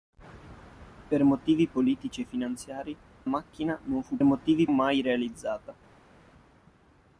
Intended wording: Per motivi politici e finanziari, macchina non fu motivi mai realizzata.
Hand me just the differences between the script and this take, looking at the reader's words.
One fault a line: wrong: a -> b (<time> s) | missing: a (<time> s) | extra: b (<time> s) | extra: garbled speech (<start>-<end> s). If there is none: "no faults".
no faults